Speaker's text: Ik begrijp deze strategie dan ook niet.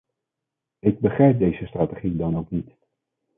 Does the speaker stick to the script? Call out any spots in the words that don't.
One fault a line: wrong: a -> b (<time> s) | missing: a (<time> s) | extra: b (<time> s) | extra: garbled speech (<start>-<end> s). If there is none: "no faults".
no faults